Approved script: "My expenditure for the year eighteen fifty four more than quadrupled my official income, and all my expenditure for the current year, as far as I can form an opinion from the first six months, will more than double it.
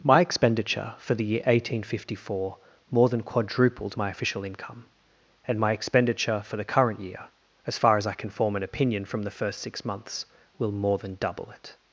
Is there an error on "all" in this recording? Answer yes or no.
yes